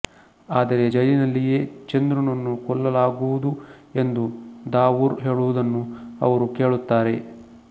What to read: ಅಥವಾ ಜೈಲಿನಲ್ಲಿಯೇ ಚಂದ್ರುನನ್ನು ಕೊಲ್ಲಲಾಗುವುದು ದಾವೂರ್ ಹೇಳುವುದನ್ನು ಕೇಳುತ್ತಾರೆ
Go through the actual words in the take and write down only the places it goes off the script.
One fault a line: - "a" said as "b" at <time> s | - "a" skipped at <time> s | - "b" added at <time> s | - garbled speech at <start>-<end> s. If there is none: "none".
- "ಅಥವಾ" said as "ಆದರೆ" at 0.5 s
- "ಎಂದು" added at 3.9 s
- "ಅವರು" added at 6.2 s